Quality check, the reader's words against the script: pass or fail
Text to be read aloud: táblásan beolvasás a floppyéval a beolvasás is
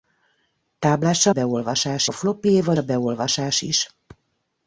pass